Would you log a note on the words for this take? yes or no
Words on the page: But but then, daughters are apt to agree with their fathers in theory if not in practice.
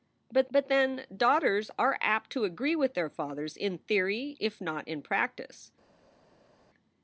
no